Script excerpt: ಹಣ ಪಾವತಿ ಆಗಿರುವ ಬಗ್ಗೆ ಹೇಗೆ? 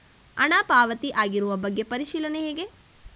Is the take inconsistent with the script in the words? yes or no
yes